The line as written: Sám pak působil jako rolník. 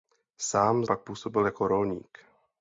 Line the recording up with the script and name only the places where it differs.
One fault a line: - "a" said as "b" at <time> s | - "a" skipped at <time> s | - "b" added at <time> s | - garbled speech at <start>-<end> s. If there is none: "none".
none